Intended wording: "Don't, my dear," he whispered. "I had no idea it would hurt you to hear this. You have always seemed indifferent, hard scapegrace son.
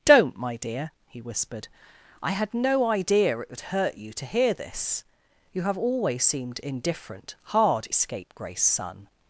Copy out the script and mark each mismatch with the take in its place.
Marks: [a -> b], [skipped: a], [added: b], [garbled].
"Don't, my dear," he whispered. "I had no idea it would hurt you to hear this. You have always seemed indifferent, hard scapegrace son.